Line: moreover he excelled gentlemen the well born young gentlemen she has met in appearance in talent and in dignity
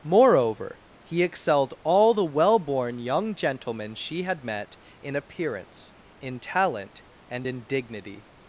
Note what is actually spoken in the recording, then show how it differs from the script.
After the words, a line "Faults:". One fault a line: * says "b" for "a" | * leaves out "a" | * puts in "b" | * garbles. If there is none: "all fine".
moreover he excelled all the well born young gentlemen she had met in appearance in talent and in dignity
Faults:
* says "all" for "gentlemen"
* says "had" for "has"